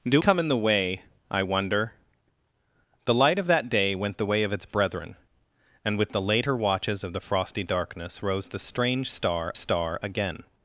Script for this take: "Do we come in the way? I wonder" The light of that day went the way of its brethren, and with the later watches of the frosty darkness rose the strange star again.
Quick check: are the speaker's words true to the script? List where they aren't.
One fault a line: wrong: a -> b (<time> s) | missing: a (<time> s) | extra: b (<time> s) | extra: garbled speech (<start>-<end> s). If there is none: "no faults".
missing: we (0.2 s)
extra: star (9.6 s)